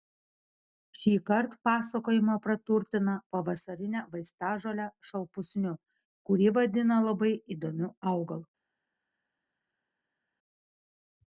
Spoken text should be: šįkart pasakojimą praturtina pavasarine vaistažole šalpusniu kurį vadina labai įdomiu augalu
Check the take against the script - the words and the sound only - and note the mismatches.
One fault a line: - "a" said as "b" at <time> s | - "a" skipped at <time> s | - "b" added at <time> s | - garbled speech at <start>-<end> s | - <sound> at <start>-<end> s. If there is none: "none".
none